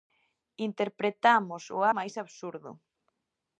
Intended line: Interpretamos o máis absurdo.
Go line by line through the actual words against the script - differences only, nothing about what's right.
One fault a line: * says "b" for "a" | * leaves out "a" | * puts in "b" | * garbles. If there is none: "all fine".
all fine